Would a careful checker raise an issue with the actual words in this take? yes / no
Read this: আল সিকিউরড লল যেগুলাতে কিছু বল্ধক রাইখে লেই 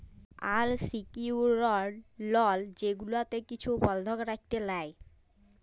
no